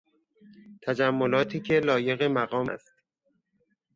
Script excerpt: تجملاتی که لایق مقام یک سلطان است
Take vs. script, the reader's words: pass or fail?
fail